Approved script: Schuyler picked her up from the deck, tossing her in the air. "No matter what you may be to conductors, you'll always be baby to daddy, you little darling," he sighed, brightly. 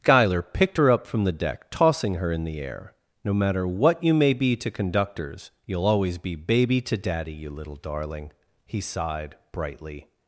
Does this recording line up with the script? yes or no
yes